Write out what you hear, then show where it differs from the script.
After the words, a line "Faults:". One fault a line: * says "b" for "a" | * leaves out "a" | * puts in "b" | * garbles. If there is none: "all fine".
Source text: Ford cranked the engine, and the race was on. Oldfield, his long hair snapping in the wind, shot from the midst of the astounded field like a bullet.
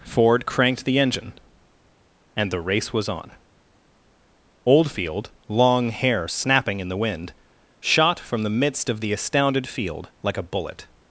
Ford cranked the engine, and the race was on. Oldfield, long hair snapping in the wind, shot from the midst of the astounded field like a bullet.
Faults:
* leaves out "his"